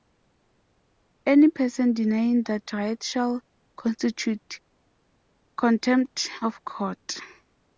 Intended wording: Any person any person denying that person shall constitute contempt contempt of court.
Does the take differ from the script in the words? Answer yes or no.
yes